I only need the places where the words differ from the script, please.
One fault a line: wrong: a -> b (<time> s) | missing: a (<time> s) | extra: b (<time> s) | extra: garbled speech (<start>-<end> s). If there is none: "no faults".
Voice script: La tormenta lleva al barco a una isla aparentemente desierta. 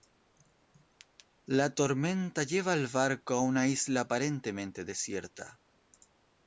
no faults